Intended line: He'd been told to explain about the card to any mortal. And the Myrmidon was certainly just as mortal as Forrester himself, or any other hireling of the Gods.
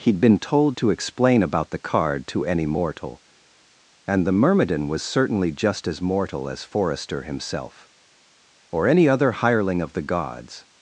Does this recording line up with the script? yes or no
yes